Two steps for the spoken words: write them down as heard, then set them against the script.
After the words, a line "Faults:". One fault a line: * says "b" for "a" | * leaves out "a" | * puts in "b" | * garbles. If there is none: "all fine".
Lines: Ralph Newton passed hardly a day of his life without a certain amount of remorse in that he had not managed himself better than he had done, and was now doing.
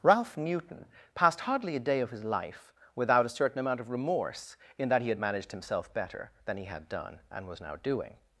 Ralph Newton passed hardly a day of his life without a certain amount of remorse in that he had managed himself better than he had done, and was now doing.
Faults:
* leaves out "not"